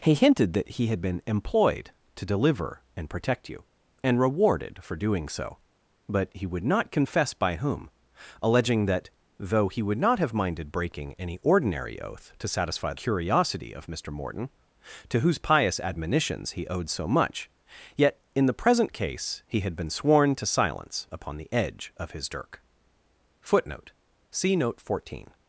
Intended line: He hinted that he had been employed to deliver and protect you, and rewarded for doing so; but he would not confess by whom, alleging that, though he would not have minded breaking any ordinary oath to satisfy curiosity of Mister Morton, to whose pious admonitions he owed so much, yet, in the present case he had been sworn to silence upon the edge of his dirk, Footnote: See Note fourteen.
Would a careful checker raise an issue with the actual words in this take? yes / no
no